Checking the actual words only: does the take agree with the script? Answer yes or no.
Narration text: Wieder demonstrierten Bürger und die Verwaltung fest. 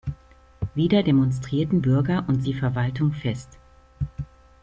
yes